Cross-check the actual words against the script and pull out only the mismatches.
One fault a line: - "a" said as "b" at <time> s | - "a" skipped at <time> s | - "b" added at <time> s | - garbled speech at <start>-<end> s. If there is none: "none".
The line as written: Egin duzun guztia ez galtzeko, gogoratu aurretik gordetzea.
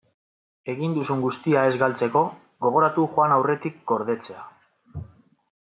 - "joan" added at 3.2 s